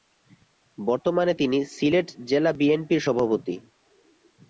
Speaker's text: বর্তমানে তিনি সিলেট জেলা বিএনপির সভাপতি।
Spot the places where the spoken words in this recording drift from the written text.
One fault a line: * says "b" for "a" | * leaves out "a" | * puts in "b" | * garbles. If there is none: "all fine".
all fine